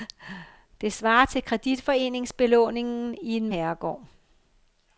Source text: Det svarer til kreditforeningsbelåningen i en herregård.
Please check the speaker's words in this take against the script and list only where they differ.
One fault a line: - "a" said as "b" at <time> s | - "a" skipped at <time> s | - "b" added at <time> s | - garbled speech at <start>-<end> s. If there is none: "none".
none